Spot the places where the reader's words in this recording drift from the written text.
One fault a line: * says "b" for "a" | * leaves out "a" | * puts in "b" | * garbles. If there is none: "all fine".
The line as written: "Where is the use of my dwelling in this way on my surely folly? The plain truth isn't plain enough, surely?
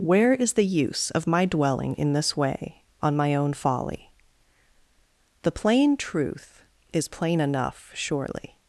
* says "own" for "surely"
* says "is" for "isn't"